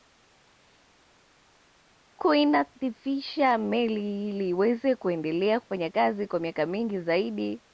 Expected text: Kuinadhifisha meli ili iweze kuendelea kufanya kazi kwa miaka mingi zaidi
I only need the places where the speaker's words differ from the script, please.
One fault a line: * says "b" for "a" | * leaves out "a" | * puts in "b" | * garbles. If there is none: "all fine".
all fine